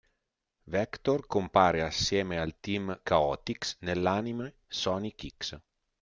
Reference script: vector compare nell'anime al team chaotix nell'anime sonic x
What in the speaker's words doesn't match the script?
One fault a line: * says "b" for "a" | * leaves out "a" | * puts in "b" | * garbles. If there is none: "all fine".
* says "assieme" for "nell'anime"